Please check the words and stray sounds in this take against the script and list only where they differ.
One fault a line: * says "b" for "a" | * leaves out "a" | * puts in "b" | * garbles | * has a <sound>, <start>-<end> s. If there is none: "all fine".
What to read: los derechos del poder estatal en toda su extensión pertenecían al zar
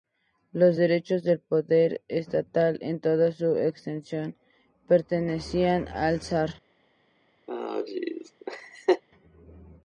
* has a laugh, 7.5-9.0 s